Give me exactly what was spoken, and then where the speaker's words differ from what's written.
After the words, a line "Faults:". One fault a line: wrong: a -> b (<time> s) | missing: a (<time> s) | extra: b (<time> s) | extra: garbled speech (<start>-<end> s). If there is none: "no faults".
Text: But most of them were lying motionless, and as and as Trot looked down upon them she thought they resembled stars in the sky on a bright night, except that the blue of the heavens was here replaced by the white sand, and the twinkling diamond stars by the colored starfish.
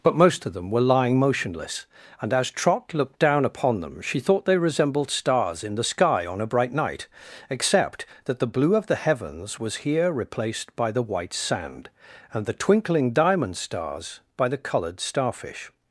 But most of them were lying motionless, and as Trot looked down upon them she thought they resembled stars in the sky on a bright night, except that the blue of the heavens was here replaced by the white sand, and the twinkling diamond stars by the colored starfish.
Faults:
missing: and as (2.5 s)